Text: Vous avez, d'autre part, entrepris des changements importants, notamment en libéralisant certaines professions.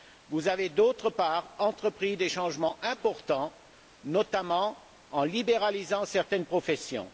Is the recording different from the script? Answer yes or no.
no